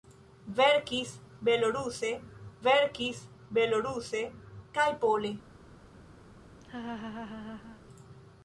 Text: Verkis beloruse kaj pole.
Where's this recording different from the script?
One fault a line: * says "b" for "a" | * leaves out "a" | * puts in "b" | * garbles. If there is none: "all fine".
* puts in "verkis beloruse"